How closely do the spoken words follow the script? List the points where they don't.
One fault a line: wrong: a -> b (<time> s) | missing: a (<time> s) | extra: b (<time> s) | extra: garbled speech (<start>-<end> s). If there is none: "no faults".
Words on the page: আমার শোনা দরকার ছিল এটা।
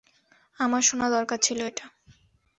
no faults